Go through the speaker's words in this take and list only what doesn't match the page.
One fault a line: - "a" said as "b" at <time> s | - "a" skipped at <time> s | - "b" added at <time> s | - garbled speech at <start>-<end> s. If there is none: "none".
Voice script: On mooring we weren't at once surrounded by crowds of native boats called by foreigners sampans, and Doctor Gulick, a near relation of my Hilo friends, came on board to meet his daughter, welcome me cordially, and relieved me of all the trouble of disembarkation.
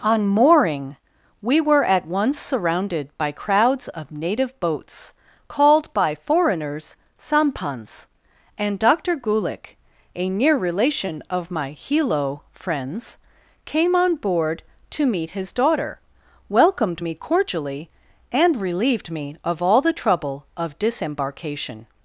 - "weren't" said as "were" at 1.6 s
- "welcome" said as "welcomed" at 16.5 s